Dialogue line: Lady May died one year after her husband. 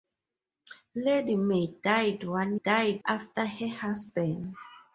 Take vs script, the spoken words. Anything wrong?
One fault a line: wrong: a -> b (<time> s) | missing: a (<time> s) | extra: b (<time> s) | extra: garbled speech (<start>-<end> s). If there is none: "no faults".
wrong: year -> died (2.6 s)